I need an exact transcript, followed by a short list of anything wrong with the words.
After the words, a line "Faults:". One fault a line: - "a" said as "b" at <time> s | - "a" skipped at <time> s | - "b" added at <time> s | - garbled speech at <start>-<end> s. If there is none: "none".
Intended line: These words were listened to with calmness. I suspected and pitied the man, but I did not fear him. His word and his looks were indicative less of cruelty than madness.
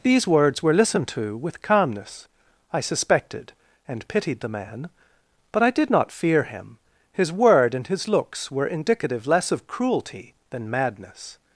These words were listened to with calmness. I suspected and pitied the man, but I did not fear him. His word and his looks were indicative less of cruelty than madness.
Faults:
none